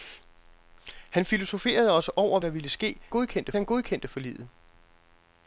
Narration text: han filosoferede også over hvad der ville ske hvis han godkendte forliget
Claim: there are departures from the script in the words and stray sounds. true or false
true